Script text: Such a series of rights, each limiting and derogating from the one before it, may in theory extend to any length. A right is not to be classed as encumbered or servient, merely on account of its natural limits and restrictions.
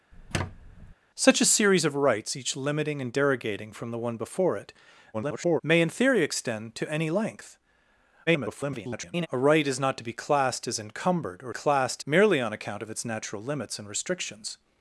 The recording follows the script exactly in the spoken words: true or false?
false